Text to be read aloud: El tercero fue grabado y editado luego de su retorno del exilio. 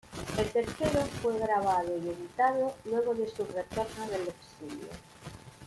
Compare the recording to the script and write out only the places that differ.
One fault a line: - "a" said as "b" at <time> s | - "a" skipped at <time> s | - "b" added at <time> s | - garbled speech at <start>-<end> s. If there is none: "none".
none